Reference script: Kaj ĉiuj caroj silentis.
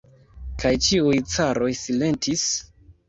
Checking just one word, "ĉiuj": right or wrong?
right